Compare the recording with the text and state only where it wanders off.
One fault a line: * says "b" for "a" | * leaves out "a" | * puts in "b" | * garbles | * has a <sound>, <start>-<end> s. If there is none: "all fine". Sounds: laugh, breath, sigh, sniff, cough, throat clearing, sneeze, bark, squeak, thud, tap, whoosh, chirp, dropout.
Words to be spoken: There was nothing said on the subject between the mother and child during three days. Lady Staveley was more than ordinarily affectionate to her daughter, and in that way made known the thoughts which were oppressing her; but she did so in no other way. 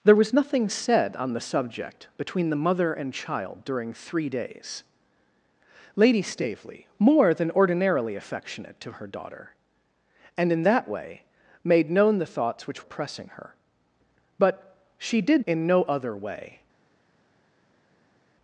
* leaves out "was"
* leaves out "were"
* leaves out "so"